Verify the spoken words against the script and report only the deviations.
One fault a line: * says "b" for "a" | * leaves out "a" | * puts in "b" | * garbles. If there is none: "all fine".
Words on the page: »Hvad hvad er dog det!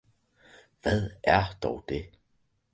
* leaves out "hvad"